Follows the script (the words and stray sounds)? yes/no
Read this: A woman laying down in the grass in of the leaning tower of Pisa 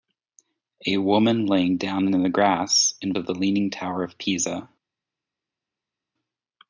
yes